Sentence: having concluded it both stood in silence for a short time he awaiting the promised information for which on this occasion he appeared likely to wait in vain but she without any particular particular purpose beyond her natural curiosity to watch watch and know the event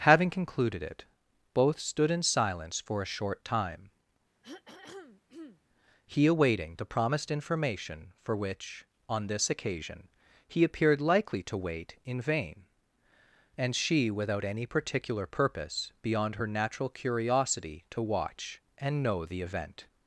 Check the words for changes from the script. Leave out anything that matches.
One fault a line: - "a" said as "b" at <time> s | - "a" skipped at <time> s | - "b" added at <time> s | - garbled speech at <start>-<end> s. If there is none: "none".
- "but" said as "and" at 13.6 s
- "particular" skipped at 15.3 s
- "watch" skipped at 18.6 s